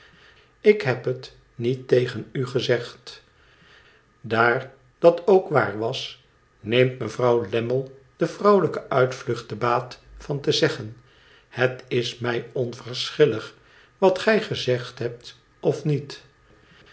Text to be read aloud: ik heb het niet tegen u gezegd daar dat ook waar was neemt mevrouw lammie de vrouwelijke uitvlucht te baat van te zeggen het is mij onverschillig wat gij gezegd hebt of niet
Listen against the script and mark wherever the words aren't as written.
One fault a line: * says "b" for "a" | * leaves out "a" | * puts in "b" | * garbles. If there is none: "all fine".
all fine